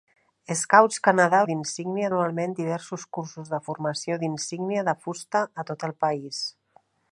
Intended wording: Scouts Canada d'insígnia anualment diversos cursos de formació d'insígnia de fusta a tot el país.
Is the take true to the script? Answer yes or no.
yes